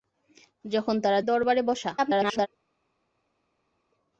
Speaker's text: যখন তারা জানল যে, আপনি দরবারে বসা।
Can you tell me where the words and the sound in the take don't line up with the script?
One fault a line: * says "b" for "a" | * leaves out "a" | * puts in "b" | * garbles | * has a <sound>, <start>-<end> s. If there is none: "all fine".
* leaves out "জানল যে আপনি"
* garbles